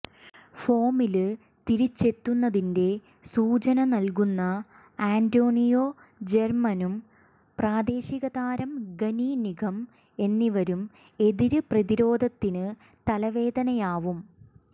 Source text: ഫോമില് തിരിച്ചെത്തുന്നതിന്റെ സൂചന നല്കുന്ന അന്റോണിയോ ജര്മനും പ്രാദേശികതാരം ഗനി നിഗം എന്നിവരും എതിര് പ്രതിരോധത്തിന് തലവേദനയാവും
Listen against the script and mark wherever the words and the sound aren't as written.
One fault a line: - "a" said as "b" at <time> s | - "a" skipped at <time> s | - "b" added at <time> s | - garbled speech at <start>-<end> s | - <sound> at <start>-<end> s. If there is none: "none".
none